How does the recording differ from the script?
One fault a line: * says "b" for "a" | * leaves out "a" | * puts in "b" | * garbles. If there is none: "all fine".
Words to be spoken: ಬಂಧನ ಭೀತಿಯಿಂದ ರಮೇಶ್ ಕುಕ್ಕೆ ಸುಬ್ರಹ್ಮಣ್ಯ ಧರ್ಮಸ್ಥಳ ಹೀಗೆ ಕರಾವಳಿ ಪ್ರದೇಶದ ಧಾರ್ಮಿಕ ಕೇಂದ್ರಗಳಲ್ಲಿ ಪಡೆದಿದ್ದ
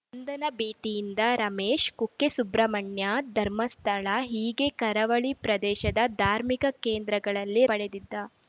all fine